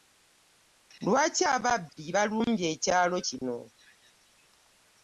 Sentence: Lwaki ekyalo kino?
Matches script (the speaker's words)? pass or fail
fail